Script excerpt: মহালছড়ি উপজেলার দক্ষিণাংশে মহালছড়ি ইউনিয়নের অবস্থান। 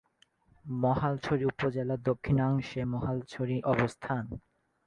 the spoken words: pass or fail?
fail